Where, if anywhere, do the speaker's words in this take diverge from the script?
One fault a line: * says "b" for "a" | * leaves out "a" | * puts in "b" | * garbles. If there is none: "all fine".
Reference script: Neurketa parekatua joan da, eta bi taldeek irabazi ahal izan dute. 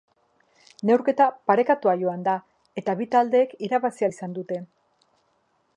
all fine